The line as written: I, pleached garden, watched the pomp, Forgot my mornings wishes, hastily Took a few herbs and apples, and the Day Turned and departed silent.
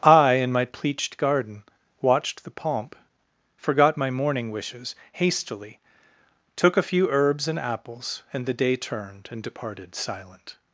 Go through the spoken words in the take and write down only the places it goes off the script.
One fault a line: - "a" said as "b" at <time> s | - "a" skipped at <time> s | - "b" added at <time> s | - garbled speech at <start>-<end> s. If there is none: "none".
- "in my" added at 0.3 s
- "mornings" said as "morning" at 4.1 s